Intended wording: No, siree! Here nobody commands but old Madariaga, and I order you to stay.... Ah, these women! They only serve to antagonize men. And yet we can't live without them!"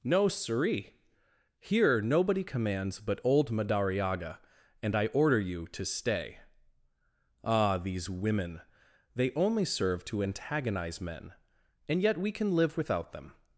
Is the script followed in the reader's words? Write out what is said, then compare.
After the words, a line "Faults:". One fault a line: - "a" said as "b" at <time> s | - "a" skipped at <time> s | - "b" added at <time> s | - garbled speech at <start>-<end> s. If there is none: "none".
No, siree! Here nobody commands but old Madariaga, and I order you to stay.... Ah, these women! They only serve to antagonize men. And yet we can live without them!"
Faults:
- "can't" said as "can" at 12.3 s